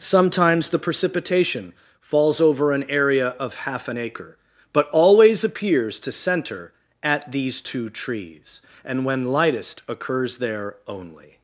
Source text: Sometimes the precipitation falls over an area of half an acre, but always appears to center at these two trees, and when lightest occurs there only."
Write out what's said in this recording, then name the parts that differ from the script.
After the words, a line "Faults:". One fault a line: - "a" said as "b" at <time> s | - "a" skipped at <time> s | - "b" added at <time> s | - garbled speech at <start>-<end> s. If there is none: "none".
Sometimes the precipitation falls over an area of half an acre, but always appears to center at these two trees, and when lightest occurs there only."
Faults:
none